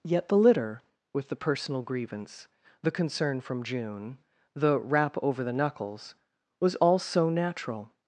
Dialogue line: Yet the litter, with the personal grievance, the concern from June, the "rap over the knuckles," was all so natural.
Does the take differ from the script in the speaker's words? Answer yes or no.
no